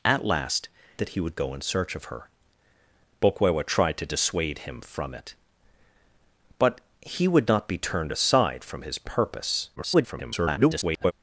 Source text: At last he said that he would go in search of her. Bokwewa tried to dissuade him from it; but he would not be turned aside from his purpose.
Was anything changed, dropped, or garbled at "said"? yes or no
yes